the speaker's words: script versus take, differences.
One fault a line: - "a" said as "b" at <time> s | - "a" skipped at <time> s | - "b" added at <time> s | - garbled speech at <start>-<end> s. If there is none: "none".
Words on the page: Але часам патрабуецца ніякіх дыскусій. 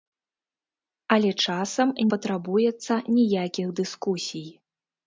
none